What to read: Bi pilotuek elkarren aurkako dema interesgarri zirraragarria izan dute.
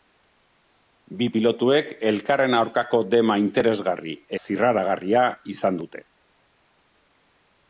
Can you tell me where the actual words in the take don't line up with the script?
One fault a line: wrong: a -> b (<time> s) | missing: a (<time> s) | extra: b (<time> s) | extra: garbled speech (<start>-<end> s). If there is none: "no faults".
no faults